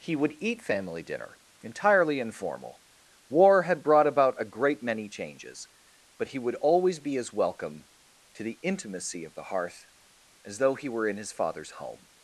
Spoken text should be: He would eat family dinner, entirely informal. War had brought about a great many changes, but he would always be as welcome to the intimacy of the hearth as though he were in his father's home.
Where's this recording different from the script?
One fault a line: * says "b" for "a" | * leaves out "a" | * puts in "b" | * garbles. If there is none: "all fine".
all fine